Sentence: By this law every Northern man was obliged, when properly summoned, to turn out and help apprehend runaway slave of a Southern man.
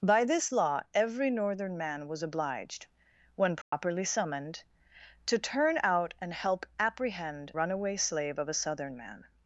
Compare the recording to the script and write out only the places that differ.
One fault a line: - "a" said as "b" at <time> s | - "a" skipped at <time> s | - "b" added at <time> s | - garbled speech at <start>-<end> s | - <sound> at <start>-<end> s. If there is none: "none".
- dropout at 3.6-3.7 s